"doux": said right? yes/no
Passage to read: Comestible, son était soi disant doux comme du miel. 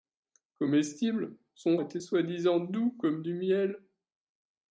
yes